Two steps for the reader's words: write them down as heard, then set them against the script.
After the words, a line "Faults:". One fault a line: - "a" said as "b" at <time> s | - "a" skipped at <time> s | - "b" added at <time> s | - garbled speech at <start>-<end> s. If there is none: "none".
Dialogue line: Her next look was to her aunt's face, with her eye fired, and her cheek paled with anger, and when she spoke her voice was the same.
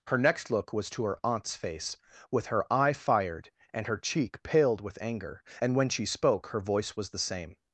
Her next look was to her aunt's face, with her eye fired, and her cheek paled with anger, and when she spoke her voice was the same.
Faults:
none